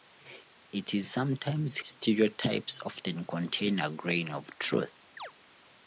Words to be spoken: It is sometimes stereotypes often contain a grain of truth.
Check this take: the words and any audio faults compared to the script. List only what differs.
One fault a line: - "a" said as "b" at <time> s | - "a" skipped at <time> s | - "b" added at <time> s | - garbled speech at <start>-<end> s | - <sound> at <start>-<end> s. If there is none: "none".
- chirp at 5.2-5.3 s